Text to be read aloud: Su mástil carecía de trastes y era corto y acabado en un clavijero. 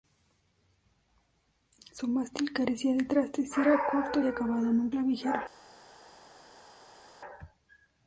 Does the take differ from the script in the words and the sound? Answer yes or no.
no